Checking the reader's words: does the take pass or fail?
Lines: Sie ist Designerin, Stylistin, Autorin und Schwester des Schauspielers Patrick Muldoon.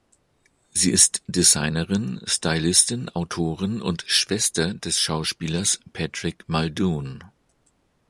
pass